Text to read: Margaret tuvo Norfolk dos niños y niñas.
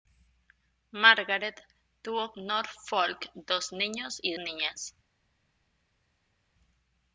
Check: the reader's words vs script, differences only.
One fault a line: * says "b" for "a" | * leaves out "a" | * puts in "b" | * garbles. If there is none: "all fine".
all fine